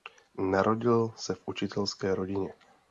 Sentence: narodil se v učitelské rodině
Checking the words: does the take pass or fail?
pass